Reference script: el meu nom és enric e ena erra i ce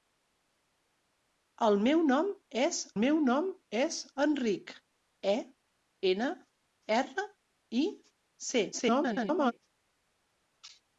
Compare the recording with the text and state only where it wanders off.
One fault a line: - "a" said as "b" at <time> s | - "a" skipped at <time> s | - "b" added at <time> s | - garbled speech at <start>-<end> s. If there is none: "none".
- "meu nom és" added at 3.0 s
- garbled speech at 8.7-9.5 s